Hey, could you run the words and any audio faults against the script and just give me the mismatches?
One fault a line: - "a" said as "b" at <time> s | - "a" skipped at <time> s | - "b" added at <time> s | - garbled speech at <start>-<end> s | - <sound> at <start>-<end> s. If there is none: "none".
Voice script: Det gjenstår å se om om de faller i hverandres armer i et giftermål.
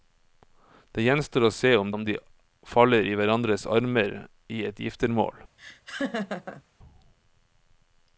- laugh at 5.6-6.6 s